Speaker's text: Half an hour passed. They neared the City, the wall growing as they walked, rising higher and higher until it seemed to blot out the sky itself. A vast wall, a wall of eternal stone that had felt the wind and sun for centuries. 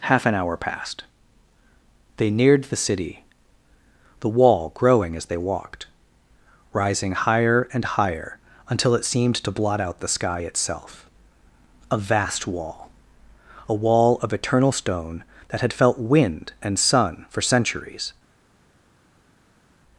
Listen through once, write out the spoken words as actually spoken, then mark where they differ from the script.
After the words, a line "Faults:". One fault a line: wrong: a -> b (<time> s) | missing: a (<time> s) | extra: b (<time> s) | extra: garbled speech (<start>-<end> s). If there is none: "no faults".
Half an hour passed. They neared the City, the wall growing as they walked, rising higher and higher until it seemed to blot out the sky itself. A vast wall, a wall of eternal stone that had felt wind and sun for centuries.
Faults:
missing: the (16.0 s)